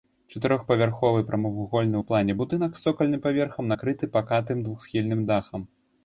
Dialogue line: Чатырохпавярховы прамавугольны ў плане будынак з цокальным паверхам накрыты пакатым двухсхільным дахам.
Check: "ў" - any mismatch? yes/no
no